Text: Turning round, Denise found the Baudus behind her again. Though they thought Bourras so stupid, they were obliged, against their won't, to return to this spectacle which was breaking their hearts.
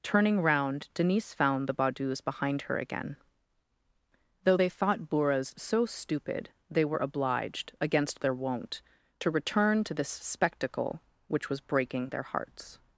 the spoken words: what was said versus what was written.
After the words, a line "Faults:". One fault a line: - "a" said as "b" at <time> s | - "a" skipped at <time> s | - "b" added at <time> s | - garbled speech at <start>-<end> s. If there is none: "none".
Turning round, Denise found the Baudus behind her again. Though they thought Bourras so stupid, they were obliged, against their won't, to return to this spectacle which was breaking their hearts.
Faults:
none